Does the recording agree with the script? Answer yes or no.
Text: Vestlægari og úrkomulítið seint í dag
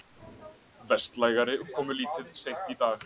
no